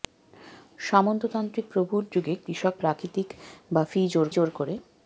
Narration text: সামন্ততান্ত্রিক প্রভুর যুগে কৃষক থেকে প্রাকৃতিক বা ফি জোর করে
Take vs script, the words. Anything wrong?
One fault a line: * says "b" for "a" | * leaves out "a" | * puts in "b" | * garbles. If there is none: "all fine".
* leaves out "থেকে"
* puts in "জোর"